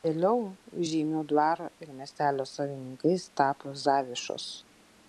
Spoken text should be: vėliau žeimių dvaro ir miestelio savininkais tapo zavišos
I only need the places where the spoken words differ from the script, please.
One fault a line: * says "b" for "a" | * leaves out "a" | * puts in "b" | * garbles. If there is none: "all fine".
all fine